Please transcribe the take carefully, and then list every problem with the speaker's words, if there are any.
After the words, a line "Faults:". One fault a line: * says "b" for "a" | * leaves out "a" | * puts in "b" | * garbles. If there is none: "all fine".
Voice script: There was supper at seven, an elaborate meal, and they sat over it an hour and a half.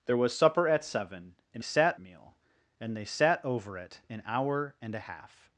There was supper at seven, an sat meal, and they sat over it an hour and a half.
Faults:
* says "sat" for "elaborate"